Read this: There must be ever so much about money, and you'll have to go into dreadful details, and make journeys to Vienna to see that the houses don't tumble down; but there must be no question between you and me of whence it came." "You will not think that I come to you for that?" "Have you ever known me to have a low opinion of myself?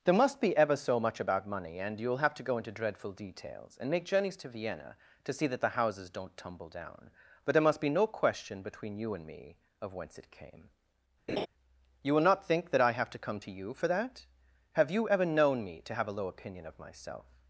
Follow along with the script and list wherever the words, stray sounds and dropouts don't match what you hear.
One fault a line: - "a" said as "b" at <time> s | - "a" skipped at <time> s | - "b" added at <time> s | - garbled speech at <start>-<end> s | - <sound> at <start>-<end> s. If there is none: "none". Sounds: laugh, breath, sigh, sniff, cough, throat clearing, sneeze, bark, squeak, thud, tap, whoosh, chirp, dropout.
- laugh at 11.3-11.5 s
- "have to" added at 12.9 s